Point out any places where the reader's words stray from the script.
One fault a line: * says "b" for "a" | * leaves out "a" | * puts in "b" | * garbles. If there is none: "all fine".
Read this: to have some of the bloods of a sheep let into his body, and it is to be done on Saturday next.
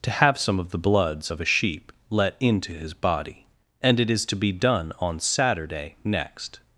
all fine